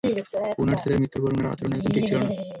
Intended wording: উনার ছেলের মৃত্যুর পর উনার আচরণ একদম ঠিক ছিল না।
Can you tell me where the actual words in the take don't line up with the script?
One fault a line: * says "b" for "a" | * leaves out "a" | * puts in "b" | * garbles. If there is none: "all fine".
all fine